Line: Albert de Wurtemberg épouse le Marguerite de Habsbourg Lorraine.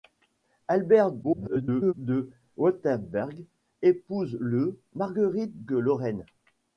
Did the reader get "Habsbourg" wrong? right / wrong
wrong